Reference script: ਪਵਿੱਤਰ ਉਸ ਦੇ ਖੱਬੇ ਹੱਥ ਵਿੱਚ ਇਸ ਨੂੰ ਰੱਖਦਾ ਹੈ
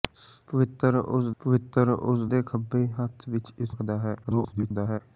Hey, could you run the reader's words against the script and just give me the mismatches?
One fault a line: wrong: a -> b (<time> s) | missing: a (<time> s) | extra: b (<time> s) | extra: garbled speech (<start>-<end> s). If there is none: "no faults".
extra: ਪਵਿੱਤਰ ਉਸ (1.4 s)
missing: ਨੂੰ (3.8 s)
extra: garbled speech (4.2-5.0 s)